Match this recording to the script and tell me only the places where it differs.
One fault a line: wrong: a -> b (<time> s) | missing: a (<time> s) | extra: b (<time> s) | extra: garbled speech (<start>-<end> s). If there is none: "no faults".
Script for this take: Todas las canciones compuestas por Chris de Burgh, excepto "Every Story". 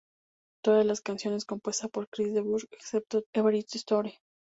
no faults